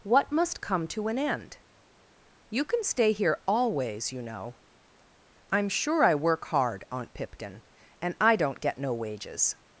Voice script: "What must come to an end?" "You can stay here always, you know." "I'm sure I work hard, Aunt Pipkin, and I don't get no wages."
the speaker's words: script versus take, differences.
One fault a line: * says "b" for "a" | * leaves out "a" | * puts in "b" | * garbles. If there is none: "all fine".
all fine